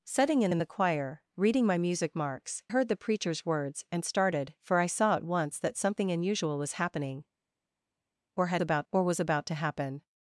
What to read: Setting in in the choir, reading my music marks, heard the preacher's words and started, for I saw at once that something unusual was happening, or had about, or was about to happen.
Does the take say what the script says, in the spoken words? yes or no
yes